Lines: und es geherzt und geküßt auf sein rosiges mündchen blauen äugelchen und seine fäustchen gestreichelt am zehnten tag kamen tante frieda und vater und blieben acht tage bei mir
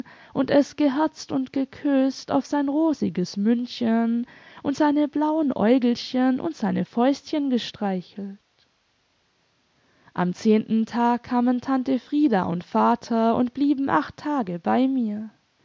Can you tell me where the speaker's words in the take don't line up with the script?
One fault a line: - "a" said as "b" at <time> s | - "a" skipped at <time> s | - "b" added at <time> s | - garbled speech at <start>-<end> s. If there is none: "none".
- "und seine" added at 4.6 s